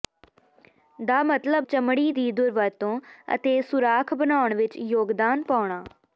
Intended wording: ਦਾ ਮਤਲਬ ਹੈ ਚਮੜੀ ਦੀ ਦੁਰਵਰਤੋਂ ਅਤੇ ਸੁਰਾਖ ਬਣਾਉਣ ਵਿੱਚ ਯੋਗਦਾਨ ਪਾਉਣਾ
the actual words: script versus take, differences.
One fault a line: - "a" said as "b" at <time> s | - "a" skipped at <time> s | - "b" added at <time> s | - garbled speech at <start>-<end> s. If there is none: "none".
- "ਹੈ" skipped at 1.7 s